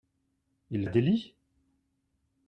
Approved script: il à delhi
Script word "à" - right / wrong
right